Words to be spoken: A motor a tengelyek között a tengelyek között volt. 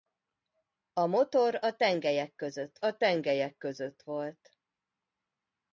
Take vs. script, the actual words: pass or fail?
pass